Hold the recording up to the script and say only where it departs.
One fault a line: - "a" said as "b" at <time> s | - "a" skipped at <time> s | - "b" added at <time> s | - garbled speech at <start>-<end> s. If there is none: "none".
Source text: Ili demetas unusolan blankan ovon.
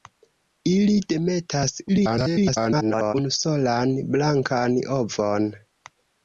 - garbled speech at 1.9-3.1 s